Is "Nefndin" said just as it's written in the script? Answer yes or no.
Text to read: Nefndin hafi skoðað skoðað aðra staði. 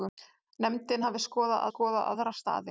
yes